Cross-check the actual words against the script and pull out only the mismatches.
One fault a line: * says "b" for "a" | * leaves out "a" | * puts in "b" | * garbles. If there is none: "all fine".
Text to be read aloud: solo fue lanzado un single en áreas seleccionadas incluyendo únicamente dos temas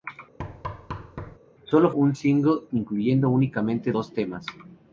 * leaves out "fue lanzado"
* leaves out "en áreas seleccionadas"